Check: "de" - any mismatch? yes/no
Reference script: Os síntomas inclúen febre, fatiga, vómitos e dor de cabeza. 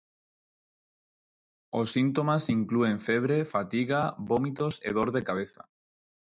no